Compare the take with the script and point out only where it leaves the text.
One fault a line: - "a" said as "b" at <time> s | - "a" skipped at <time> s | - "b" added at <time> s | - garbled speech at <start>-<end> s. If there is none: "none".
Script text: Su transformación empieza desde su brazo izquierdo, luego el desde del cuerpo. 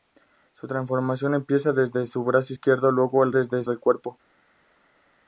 none